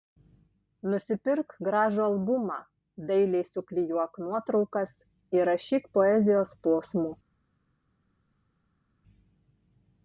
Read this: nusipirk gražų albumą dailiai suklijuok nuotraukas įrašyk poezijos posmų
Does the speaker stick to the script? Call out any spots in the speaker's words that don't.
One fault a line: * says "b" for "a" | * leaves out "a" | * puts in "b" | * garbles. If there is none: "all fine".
all fine